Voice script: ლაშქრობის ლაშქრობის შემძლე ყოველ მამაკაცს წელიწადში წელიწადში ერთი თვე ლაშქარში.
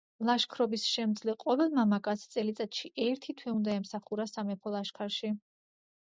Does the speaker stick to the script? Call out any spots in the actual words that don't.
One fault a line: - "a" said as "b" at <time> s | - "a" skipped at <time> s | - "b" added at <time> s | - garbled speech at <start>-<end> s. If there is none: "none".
- "ლაშქრობის" skipped at 0.8 s
- "წელიწადში" skipped at 2.9 s
- "უნდა ემსახურა სამეფო" added at 3.6 s